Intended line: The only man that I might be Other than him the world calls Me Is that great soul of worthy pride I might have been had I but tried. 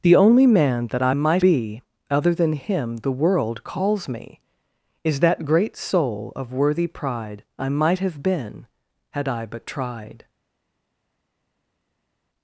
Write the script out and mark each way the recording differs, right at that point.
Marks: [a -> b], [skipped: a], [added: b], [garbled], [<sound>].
The only man that I might be Other than him the world calls Me Is that great soul of worthy pride I might have been had I but tried.